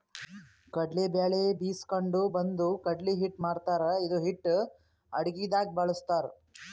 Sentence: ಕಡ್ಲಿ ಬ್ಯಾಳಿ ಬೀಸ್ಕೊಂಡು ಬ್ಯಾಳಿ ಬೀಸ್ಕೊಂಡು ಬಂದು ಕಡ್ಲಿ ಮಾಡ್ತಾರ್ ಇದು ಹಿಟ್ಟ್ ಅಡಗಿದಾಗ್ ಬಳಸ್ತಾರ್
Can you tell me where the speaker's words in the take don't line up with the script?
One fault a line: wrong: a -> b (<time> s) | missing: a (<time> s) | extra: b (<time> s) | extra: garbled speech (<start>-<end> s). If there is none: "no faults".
missing: ಬ್ಯಾಳಿ ಬೀಸ್ಕೊಂಡು (2.2 s)
extra: ಹಿಟ್ಟ್ (3.2 s)